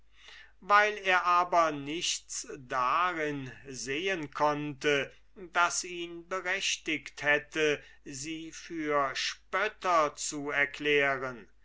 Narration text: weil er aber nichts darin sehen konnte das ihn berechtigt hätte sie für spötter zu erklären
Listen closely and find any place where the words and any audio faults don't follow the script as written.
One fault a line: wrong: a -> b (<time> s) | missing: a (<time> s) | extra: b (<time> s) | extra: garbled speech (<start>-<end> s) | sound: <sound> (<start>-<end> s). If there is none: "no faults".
no faults